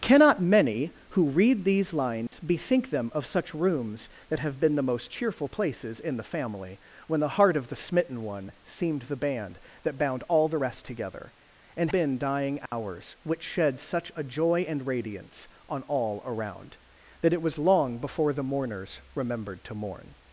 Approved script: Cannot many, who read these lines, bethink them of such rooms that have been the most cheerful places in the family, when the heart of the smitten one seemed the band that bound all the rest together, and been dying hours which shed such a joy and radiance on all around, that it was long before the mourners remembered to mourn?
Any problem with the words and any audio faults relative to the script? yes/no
yes